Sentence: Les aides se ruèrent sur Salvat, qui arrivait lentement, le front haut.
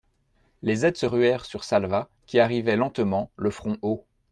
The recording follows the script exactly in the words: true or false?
true